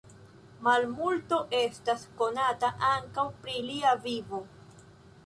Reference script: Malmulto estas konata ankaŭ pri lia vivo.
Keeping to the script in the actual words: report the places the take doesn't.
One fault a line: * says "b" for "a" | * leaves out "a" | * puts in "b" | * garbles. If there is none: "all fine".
all fine